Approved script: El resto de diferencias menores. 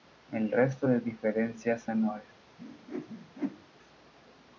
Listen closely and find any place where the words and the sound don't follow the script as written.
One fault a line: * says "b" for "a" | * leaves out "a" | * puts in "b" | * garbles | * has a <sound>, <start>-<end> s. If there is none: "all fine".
* has a whoosh, 2.6-3.7 s